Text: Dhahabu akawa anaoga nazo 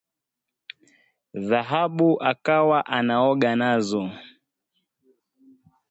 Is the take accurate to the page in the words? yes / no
yes